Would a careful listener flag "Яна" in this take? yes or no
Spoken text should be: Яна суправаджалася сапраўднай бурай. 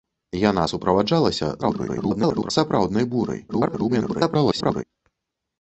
no